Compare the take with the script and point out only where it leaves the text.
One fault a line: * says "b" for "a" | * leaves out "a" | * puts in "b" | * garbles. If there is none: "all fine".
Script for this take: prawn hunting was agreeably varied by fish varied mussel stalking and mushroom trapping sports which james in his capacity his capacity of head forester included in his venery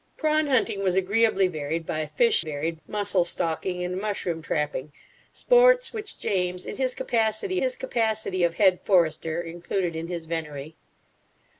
all fine